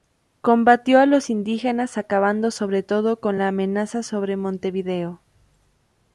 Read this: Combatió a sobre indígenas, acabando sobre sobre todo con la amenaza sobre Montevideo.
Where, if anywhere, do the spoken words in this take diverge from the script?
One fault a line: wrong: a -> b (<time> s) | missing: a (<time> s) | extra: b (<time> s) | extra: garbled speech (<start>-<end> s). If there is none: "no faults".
wrong: sobre -> los (1.1 s)
missing: sobre (2.8 s)